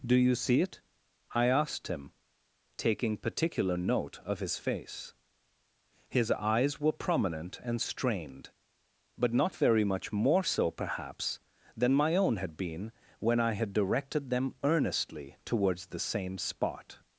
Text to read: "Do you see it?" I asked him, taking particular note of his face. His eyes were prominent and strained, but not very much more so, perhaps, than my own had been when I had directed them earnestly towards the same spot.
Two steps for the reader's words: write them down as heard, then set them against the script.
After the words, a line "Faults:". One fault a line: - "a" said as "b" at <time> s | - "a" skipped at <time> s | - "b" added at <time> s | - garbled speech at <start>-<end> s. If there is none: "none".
"Do you see it?" I asked him, taking particular note of his face. His eyes were prominent and strained, but not very much more so, perhaps, than my own had been when I had directed them earnestly towards the same spot.
Faults:
none